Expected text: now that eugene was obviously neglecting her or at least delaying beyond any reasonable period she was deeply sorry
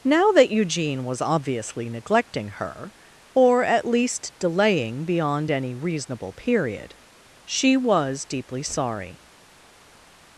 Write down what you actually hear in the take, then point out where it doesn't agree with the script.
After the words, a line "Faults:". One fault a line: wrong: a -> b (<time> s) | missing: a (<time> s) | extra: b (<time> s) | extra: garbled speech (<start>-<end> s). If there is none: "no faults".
now that eugene was obviously neglecting her or at least delaying beyond any reasonable period she was deeply sorry
Faults:
no faults